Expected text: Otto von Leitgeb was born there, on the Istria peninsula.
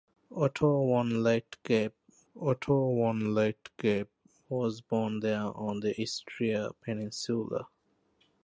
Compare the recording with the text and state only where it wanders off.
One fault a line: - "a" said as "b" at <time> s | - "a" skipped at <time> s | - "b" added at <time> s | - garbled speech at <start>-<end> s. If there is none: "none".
- "otto von Leitgeb" added at 2.4 s